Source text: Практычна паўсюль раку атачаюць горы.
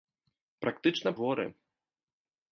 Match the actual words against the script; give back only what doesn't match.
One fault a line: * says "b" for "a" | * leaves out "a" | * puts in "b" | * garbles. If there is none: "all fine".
* leaves out "паўсюль раку атачаюць"